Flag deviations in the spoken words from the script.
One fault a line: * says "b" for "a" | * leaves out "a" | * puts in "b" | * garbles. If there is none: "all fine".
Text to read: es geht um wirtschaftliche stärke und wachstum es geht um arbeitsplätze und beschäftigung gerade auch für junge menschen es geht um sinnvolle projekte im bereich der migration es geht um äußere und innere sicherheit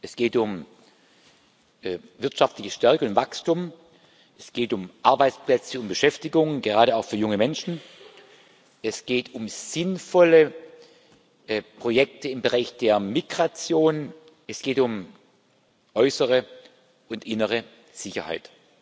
all fine